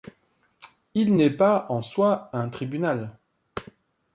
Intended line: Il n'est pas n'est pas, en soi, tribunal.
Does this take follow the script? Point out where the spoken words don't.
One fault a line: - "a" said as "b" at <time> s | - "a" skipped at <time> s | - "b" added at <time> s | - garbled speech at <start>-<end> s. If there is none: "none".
- "n'est pas" skipped at 1.6 s
- "un" added at 2.3 s